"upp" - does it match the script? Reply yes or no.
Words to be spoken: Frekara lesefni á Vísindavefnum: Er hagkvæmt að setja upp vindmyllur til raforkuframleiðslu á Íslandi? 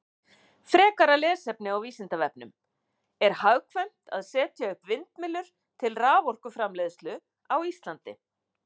yes